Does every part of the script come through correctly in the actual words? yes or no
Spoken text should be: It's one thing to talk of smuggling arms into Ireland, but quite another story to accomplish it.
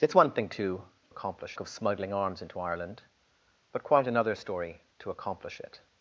no